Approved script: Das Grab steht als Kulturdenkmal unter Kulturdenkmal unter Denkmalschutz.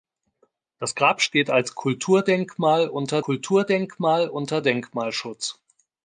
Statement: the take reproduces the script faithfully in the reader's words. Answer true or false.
true